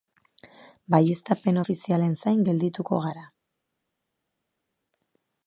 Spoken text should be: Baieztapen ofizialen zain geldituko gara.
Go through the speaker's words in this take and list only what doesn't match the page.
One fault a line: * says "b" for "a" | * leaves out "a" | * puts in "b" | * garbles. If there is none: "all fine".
all fine